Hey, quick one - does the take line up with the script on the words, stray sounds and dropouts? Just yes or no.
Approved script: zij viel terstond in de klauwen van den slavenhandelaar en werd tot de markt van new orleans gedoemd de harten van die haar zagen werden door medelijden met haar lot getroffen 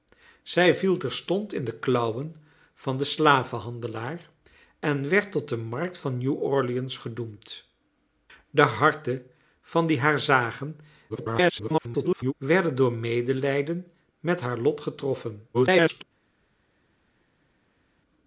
no